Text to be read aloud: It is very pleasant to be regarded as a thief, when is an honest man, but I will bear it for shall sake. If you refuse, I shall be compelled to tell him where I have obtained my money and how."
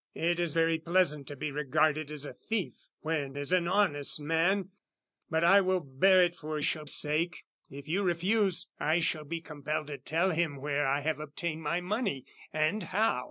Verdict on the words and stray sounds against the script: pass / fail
pass